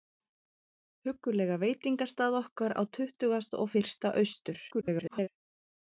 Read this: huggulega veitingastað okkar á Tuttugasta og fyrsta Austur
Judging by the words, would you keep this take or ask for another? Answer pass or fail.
fail